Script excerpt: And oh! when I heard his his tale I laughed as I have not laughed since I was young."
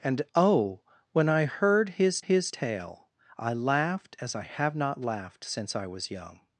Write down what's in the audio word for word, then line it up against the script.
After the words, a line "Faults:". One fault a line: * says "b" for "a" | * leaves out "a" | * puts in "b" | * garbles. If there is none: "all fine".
And oh! when I heard his his tale I laughed as I have not laughed since I was young."
Faults:
all fine